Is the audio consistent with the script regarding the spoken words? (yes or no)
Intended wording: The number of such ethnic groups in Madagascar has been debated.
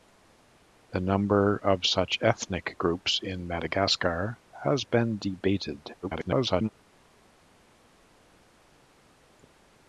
no